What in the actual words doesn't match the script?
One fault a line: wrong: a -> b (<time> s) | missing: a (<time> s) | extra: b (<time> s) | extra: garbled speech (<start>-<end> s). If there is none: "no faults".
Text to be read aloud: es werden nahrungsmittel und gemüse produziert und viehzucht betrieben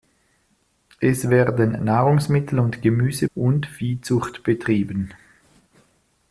missing: produziert (3.3 s)